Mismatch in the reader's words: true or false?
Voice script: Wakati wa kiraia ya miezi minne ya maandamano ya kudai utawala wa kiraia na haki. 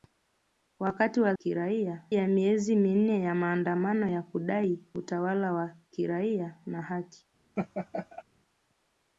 false